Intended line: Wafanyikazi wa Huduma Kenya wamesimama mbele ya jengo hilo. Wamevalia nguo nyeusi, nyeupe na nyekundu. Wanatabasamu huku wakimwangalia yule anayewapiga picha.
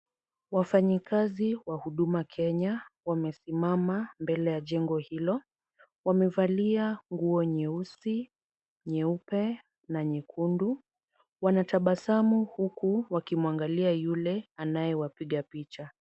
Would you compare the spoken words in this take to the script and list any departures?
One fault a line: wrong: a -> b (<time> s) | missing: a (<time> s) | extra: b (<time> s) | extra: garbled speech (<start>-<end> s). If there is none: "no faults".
no faults